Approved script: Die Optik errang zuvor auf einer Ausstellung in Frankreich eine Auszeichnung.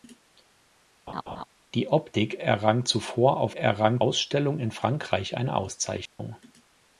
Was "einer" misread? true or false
true